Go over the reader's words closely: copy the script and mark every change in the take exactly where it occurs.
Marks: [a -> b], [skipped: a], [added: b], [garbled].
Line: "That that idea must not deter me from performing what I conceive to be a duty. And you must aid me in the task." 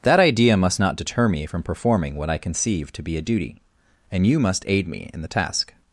"That [skipped: that] idea must not deter me from performing what I conceive to be a duty. And you must aid me in the task."